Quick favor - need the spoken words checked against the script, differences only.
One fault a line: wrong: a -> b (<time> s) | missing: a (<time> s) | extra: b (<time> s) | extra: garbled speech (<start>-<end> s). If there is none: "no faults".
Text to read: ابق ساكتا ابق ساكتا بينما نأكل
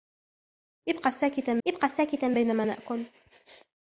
no faults